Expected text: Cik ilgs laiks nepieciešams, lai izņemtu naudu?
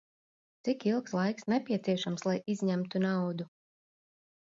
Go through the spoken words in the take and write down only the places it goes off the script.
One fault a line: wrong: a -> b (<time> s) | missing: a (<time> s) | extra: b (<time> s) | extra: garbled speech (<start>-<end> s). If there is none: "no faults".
no faults